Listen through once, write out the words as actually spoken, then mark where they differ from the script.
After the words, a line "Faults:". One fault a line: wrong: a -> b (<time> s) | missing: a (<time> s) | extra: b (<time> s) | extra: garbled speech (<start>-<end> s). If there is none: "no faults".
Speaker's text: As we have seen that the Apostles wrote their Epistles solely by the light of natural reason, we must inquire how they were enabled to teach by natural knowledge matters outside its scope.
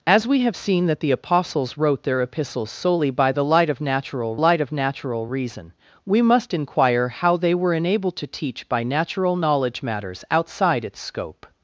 As we have seen that the Apostles wrote their Epistles solely by the light of natural light of natural reason, we must inquire how they were enabled to teach by natural knowledge matters outside its scope.
Faults:
extra: light of natural (4.3 s)